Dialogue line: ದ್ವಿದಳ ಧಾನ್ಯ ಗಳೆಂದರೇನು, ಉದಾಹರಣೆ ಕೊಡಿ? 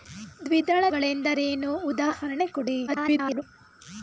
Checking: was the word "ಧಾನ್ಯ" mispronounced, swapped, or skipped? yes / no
yes